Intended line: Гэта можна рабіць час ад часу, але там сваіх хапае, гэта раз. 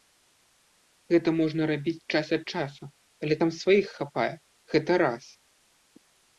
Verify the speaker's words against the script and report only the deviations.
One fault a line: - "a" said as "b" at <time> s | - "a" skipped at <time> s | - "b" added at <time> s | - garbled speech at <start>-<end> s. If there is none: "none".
none